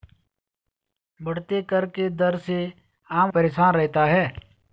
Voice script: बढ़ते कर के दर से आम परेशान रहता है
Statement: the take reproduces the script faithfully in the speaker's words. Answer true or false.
true